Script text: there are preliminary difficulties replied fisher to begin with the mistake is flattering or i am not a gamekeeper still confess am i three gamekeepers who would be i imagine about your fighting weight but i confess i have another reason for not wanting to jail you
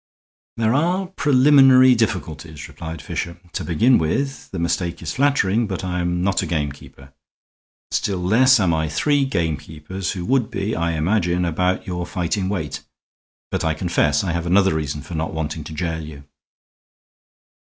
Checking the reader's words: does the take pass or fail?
fail